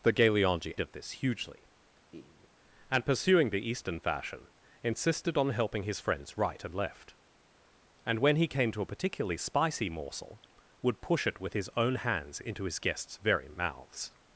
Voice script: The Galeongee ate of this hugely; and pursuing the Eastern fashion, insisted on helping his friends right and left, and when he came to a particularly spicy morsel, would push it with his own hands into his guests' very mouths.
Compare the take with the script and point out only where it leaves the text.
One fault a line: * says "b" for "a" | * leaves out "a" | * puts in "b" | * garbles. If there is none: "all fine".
* leaves out "ate"